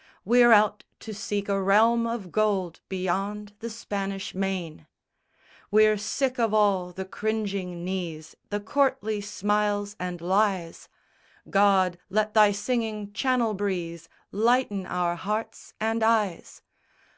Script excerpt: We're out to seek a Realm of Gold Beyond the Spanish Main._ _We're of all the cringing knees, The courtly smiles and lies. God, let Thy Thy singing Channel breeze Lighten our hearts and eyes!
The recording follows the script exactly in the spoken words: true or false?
false